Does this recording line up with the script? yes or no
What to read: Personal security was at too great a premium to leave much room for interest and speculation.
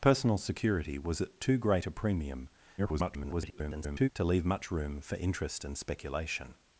no